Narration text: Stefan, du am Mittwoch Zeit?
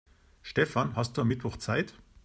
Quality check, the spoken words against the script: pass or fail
fail